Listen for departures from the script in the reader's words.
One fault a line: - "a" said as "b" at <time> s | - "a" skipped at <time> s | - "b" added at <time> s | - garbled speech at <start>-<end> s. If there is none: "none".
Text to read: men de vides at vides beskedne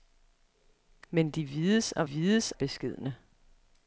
none